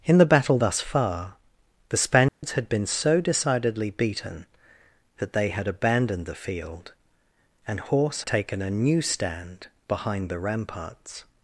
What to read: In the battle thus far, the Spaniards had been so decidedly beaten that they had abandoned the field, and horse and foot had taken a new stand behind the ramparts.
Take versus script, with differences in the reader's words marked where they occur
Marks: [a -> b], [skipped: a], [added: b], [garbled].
In the battle thus far, the Spaniards had been so decidedly beaten that they had abandoned the field, and horse [skipped: and foot had] taken a new stand behind the ramparts.